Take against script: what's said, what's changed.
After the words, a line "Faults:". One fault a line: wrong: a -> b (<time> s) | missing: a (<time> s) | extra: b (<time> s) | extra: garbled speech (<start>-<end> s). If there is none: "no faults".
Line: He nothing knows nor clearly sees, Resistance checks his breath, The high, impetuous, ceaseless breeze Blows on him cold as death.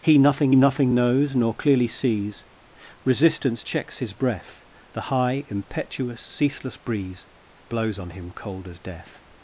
He nothing nothing knows nor clearly sees, Resistance checks his breath, The high, impetuous, ceaseless breeze Blows on him cold as death.
Faults:
extra: nothing (0.5 s)